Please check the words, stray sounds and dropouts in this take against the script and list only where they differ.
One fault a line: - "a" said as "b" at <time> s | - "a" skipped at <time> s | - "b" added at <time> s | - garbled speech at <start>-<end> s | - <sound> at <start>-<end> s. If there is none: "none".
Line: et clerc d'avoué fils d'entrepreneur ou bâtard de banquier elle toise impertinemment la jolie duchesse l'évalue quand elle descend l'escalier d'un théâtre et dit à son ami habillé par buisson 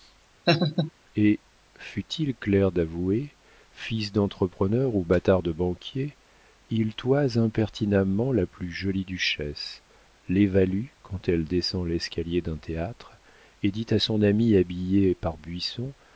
- laugh at 0.5-0.9 s
- "fût il" added at 1.8 s
- "elle" said as "il" at 6.7 s
- "plus" added at 8.5 s